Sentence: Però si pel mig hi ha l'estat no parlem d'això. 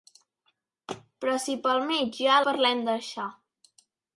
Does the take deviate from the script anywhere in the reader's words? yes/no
yes